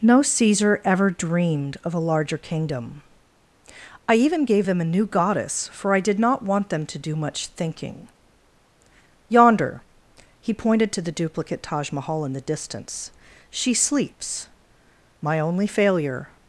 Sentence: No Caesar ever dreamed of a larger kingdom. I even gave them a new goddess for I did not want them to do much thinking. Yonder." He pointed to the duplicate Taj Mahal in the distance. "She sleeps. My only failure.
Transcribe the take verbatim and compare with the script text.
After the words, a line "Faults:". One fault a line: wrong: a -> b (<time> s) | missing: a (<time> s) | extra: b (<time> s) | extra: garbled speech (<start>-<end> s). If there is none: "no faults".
No Caesar ever dreamed of a larger kingdom. I even gave them a new goddess for I did not want them to do much thinking. Yonder." He pointed to the duplicate Taj Mahal in the distance. "She sleeps. My only failure.
Faults:
no faults